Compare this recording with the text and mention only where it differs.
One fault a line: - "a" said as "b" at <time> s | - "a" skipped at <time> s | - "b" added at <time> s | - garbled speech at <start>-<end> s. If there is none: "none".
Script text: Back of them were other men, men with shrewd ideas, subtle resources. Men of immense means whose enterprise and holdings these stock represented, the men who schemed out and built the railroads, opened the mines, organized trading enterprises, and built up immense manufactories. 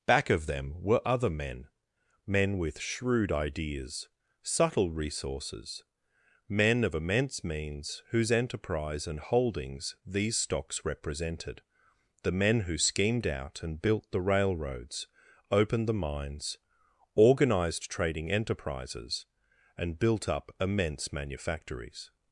- "stock" said as "stocks" at 10.4 s